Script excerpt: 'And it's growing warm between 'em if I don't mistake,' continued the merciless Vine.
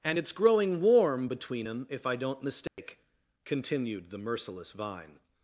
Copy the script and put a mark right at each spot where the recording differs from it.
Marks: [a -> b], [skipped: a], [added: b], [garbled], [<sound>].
'And it's growing warm between 'em if I don't mistake,' [dropout] continued the merciless Vine.